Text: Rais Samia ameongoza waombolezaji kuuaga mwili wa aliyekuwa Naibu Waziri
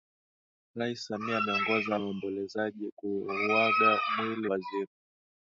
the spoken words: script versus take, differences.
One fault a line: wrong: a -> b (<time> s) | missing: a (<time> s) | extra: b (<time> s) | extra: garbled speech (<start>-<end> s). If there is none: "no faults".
missing: wa aliyekuwa Naibu (4.5 s)